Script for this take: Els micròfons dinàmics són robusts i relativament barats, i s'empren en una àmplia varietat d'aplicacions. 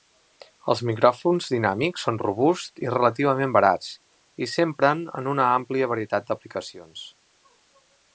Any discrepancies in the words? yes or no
no